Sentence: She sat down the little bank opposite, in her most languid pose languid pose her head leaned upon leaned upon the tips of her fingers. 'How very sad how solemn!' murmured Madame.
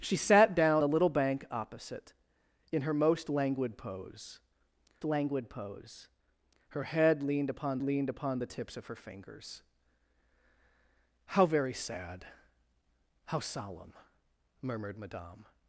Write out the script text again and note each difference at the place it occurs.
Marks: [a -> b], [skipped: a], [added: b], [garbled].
She sat down the little bank opposite, in her most languid pose languid pose her head leaned upon leaned upon the tips of her fingers. 'How very sad how solemn!' murmured Madame.